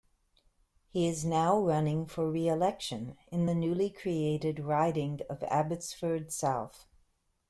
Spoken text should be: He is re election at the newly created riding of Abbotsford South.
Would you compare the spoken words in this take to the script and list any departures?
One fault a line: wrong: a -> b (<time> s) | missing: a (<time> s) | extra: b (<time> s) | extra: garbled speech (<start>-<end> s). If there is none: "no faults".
extra: now running for (1.2 s)
wrong: at -> in (3.3 s)